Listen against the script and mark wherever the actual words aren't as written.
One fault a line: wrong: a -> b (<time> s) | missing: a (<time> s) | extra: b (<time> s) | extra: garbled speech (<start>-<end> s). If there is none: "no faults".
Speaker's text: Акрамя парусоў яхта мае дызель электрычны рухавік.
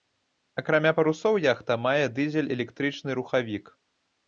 no faults